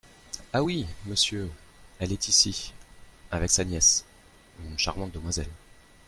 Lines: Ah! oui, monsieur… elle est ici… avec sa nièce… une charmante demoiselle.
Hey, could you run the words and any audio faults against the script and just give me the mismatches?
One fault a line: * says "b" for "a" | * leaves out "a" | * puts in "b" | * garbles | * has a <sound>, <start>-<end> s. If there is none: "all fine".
all fine